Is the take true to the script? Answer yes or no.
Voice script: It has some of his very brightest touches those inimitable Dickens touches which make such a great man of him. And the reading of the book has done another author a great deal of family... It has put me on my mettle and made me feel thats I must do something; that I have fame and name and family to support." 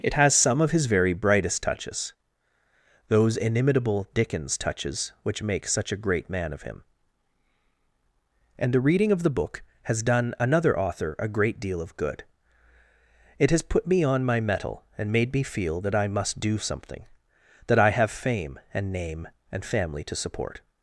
no